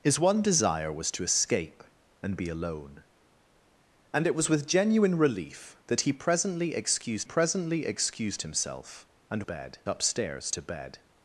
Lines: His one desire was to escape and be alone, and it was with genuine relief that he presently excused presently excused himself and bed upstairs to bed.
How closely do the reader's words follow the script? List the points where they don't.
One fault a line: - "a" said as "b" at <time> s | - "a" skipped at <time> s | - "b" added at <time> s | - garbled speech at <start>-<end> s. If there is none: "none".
none